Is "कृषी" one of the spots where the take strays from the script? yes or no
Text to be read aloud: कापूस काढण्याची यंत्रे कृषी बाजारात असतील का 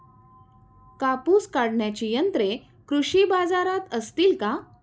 no